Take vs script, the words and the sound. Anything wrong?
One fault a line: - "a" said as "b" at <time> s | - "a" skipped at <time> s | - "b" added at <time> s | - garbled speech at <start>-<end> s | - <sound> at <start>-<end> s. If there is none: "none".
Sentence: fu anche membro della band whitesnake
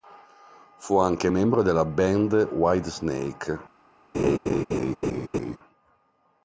- laugh at 4.1-5.6 s